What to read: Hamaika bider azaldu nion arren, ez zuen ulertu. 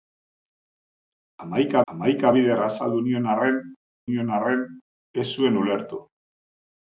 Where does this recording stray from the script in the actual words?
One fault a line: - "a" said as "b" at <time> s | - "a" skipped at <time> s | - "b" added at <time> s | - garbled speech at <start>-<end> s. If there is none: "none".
- "hamaika" added at 1.9 s
- "nion arren" added at 4.1 s